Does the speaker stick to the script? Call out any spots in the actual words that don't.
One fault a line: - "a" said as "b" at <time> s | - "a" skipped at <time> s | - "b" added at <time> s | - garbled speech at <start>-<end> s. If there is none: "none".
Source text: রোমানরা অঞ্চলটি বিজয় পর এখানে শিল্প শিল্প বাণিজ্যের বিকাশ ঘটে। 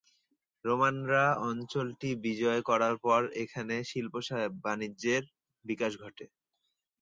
- "করার" added at 2.7 s
- "শিল্প" skipped at 4.1 s